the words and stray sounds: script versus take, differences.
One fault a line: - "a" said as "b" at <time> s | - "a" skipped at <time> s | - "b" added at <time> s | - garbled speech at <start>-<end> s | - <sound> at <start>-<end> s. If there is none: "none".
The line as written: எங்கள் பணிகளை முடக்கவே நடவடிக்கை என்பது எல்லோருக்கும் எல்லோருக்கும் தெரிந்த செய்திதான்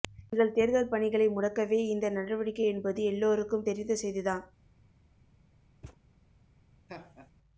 - "தேர்தல்" added at 0.5 s
- "இந்த" added at 1.9 s
- "எல்லோருக்கும்" skipped at 3.7 s
- thud at 5.8-6.0 s
- laugh at 6.9-7.3 s